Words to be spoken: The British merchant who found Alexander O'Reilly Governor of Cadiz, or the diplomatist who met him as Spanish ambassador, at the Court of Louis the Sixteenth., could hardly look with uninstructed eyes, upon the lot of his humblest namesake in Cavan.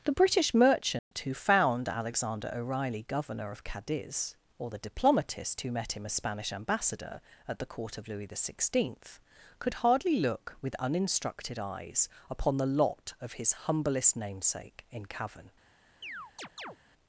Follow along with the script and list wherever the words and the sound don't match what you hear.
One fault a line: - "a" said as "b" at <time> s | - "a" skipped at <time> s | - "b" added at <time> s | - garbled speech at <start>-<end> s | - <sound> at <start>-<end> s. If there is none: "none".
- dropout at 1.0-1.1 s
- chirp at 16.0-16.8 s